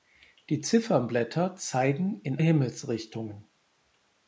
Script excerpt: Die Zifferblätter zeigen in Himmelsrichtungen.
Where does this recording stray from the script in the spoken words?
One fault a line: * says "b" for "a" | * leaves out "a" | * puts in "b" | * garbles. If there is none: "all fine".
all fine